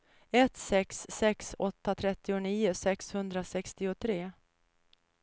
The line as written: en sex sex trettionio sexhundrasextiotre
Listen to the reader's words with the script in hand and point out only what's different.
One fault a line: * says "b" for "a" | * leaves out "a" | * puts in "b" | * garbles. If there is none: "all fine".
* says "ett" for "en"
* puts in "åtta"